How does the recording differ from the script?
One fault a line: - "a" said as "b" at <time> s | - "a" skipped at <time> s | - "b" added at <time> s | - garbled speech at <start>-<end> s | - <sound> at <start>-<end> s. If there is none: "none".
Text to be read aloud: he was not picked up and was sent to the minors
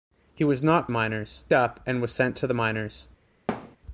- "picked" said as "minors" at 0.9 s
- thud at 3.5-3.8 s